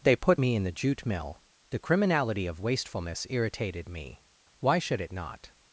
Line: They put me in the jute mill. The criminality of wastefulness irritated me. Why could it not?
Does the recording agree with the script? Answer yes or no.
no